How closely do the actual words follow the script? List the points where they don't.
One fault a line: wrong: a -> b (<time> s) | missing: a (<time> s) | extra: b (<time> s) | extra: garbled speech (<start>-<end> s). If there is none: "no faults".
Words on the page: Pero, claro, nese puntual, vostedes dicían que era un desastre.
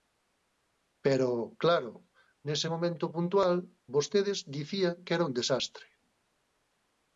extra: momento (2.7 s)